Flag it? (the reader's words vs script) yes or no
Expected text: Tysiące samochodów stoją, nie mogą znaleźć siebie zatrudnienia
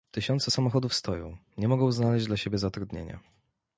yes